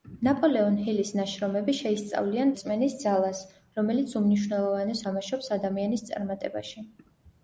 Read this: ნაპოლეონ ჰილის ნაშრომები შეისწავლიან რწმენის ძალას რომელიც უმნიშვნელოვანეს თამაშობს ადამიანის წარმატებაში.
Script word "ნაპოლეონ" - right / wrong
right